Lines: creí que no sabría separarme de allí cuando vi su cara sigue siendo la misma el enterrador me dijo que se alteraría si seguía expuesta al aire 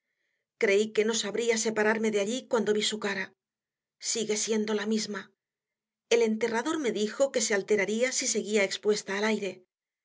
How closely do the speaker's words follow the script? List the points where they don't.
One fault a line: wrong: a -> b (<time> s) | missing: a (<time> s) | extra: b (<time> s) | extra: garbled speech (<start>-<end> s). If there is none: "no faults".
no faults